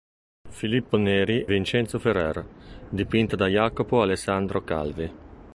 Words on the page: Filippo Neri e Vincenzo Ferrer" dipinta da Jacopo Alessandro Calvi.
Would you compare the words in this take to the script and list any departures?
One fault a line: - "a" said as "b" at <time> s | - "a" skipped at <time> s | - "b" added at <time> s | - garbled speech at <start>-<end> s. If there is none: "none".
- "e" skipped at 1.4 s